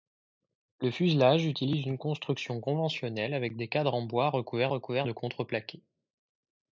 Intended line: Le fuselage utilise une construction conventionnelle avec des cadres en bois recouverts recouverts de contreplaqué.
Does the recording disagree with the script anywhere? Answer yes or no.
no